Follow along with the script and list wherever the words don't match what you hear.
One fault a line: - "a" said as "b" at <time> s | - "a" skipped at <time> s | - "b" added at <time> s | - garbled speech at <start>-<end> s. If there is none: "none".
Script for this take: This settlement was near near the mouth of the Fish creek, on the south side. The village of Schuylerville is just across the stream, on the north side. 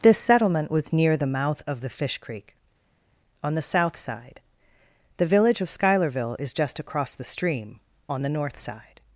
- "near" skipped at 1.1 s